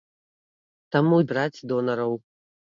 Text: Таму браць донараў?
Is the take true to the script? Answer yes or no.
yes